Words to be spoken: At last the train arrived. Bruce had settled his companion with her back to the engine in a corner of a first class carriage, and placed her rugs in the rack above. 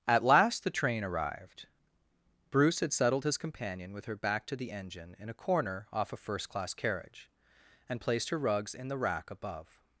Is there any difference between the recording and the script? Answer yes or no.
yes